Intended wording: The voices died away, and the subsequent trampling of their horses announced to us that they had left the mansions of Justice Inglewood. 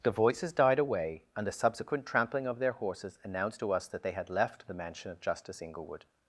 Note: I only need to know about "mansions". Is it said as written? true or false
false